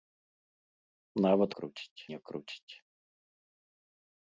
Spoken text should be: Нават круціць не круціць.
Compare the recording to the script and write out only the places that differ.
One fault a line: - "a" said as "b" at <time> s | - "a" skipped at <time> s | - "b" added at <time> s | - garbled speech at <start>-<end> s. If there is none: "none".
none